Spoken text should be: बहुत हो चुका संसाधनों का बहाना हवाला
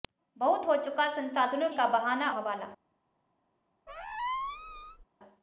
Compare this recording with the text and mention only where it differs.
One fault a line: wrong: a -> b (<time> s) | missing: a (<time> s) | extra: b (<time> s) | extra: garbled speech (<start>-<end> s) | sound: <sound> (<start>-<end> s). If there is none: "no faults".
sound: squeak (3.9-5.0 s)